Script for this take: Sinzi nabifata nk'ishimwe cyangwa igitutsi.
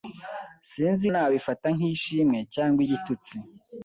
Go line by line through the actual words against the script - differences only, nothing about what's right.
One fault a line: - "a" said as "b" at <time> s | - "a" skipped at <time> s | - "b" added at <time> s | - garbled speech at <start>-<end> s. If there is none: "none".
none